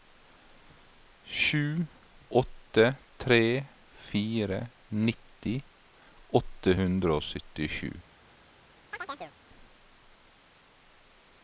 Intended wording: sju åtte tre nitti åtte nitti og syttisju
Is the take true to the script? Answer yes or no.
no